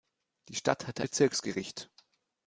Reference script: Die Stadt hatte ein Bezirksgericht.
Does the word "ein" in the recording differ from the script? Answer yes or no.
yes